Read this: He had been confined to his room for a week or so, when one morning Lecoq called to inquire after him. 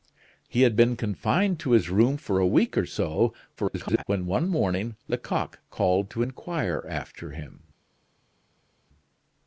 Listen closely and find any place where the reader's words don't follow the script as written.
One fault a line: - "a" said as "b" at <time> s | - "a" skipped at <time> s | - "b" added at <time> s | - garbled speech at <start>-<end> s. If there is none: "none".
- garbled speech at 3.6-4.0 s